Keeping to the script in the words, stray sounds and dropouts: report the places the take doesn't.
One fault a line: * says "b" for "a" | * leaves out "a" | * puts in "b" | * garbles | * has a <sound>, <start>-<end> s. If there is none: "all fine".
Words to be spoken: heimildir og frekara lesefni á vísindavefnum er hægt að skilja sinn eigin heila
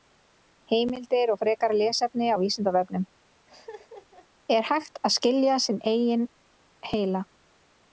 * has a laugh, 3.5-4.3 s